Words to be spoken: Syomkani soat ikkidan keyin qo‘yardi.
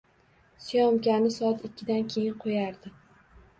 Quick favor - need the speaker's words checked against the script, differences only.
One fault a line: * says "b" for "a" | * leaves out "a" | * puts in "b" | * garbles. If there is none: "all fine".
all fine